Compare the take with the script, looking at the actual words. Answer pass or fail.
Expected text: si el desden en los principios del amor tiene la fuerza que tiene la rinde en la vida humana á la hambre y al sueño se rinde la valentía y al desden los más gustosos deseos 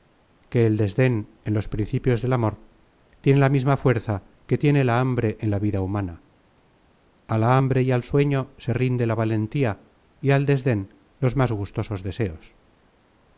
fail